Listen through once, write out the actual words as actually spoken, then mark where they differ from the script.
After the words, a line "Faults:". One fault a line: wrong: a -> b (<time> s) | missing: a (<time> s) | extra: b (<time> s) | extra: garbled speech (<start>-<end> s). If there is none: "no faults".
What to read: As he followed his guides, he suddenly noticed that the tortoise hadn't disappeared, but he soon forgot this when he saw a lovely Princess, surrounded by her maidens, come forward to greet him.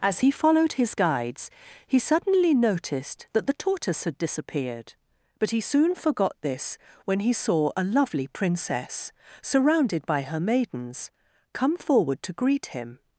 As he followed his guides, he suddenly noticed that the tortoise had disappeared, but he soon forgot this when he saw a lovely Princess, surrounded by her maidens, come forward to greet him.
Faults:
wrong: hadn't -> had (4.0 s)